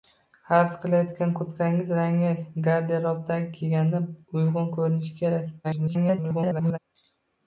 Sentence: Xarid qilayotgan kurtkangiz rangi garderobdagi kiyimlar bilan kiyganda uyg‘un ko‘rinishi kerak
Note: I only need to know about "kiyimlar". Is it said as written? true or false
false